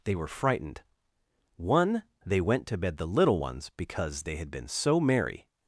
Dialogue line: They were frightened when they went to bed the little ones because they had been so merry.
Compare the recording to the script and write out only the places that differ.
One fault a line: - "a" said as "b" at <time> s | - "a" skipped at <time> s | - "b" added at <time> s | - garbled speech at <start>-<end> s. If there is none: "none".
- "when" said as "one" at 1.6 s